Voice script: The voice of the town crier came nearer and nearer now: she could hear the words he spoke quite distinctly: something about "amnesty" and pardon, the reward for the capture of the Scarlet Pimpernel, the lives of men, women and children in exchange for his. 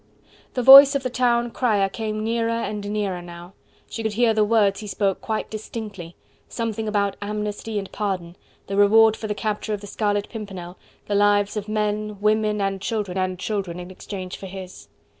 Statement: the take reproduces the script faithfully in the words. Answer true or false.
false